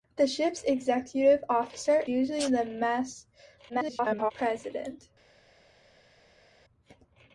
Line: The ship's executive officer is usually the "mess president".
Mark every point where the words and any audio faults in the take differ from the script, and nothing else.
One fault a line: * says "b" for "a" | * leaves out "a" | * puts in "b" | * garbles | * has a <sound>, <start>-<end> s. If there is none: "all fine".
* leaves out "is"
* garbles